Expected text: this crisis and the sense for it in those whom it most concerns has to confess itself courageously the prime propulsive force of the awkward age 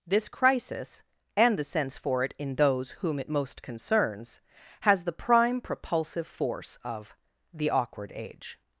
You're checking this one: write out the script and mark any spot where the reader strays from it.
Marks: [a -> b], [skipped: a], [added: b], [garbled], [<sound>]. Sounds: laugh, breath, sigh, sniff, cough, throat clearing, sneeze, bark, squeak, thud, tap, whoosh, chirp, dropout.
this crisis and the sense for it in those whom it most concerns has [skipped: to confess itself courageously] the prime propulsive force of the awkward age